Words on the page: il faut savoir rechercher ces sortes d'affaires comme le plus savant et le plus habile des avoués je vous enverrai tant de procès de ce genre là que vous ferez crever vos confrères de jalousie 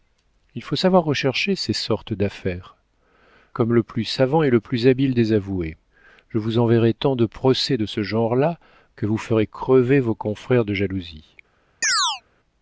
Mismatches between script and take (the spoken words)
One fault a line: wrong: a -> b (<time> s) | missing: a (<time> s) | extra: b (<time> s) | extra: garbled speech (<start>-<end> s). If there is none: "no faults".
no faults